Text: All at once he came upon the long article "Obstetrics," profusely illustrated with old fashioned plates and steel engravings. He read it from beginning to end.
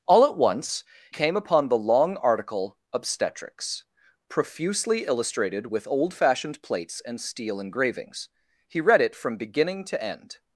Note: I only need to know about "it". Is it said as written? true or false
true